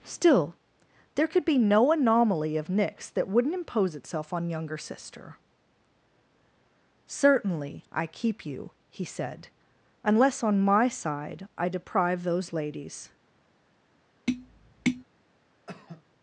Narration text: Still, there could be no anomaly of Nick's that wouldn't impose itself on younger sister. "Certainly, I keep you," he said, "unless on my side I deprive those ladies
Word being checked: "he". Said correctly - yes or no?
yes